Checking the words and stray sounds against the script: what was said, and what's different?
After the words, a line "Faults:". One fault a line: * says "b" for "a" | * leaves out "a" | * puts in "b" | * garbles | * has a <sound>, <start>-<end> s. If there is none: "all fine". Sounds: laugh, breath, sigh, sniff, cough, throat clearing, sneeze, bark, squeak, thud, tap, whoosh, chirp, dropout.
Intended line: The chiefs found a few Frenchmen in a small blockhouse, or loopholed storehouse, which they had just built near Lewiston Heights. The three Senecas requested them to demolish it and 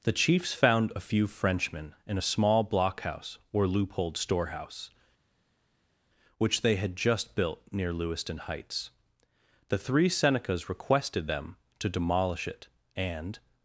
The chiefs found a few Frenchmen in a small blockhouse, or loopholed storehouse, which they had just built near Lewiston Heights. The three Senecas requested them to demolish it and
Faults:
all fine